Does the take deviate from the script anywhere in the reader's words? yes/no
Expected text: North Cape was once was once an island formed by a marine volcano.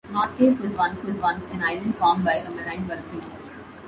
no